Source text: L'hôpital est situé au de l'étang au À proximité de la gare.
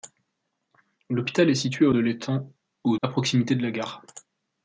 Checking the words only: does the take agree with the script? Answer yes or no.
yes